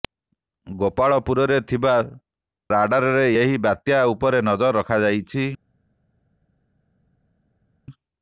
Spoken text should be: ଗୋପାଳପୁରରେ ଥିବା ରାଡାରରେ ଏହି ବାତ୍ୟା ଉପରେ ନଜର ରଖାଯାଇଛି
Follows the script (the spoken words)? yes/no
yes